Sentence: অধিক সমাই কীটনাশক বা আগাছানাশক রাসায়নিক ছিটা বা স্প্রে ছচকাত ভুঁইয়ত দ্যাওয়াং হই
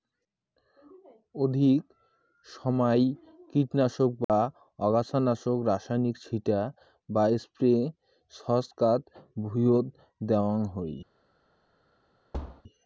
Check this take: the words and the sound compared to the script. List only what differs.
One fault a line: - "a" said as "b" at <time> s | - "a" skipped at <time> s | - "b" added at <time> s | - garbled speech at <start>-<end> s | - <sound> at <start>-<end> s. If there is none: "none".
- dropout at 4.2-4.3 s
- thud at 12.3-12.6 s